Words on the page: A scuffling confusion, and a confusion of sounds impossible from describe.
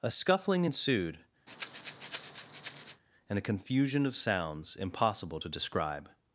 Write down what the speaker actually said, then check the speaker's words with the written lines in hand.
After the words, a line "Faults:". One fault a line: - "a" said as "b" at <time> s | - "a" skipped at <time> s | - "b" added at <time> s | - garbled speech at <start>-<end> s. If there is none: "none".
A scuffling ensued, and a confusion of sounds impossible to describe.
Faults:
- "confusion" said as "ensued" at 0.6 s
- "from" said as "to" at 5.4 s